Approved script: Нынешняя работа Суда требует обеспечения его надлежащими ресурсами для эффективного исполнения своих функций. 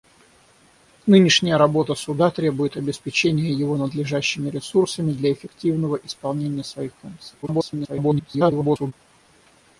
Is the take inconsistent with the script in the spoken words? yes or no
yes